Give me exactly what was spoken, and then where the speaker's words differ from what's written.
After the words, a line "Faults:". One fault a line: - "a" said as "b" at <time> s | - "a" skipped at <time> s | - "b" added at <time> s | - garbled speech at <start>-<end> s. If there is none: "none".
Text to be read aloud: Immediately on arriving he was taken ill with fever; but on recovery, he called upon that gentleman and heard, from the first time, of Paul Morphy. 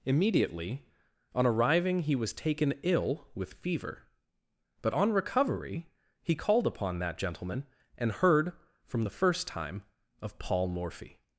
Immediately on arriving he was taken ill with fever; but on recovery, he called upon that gentleman and heard, from the first time, of Paul Morphy.
Faults:
none